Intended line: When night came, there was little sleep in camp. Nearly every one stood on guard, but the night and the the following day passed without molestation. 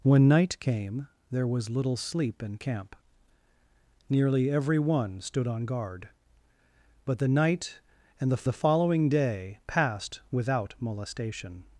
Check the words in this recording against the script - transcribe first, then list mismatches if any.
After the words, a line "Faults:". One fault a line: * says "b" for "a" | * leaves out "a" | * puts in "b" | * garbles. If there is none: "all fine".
When night came, there was little sleep in camp. Nearly every one stood on guard, but the night and the the following day passed without molestation.
Faults:
all fine